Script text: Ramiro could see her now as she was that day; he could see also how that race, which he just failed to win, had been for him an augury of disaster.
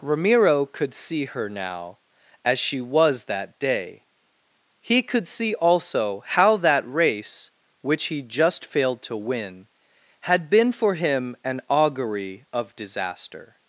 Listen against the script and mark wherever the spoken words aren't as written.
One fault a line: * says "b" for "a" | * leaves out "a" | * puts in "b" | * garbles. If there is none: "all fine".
all fine